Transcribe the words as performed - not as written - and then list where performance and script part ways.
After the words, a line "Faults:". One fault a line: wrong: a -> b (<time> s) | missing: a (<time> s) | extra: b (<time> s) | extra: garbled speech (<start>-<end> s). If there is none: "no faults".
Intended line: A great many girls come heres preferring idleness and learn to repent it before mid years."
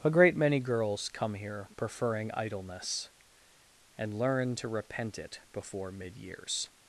A great many girls come here preferring idleness and learn to repent it before mid years."
Faults:
wrong: heres -> here (1.4 s)